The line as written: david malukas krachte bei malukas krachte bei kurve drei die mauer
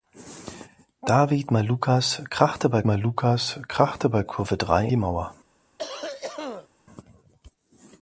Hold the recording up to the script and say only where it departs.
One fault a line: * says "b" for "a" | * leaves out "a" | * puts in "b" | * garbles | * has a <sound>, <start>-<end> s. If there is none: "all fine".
* has a cough, 5.8-6.7 s